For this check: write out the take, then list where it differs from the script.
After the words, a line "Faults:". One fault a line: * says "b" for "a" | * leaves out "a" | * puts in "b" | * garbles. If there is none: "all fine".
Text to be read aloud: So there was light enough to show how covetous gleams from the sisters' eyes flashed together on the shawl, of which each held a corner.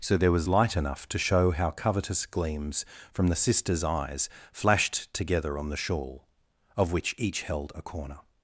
So there was light enough to show how covetous gleams from the sisters' eyes flashed together on the shawl, of which each held a corner.
Faults:
all fine